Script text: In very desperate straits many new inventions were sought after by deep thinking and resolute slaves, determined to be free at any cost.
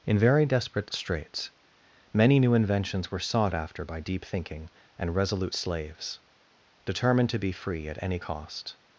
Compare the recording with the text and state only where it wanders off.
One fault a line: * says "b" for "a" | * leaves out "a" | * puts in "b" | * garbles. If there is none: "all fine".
all fine